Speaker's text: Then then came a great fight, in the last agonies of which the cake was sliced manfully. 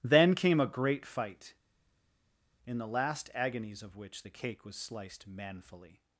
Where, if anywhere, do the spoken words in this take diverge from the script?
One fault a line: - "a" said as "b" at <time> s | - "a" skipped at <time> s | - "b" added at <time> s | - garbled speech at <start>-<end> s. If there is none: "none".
- "then" skipped at 0.3 s